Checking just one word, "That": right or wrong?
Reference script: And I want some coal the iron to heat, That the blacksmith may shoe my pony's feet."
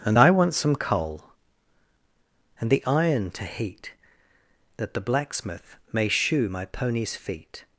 right